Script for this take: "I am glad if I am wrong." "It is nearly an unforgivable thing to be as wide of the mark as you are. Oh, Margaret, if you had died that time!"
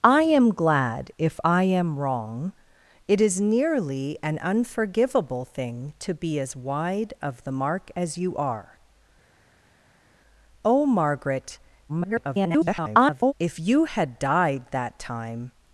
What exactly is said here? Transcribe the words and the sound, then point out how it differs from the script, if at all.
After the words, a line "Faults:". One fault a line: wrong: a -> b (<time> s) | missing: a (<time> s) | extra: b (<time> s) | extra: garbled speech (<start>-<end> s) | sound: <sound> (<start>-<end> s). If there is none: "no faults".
"I am glad if I am wrong." "It is nearly an unforgivable thing to be as wide of the mark as you are. Oh, Margaret, [garbled] if you had died that time!"
Faults:
extra: garbled speech (11.9-13.3 s)